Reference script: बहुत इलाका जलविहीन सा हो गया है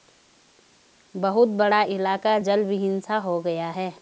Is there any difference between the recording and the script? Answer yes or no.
yes